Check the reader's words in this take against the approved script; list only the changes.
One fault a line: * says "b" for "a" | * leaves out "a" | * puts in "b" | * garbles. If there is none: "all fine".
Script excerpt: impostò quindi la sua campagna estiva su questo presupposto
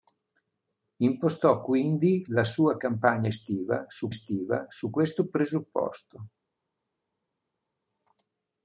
* puts in "estiva su"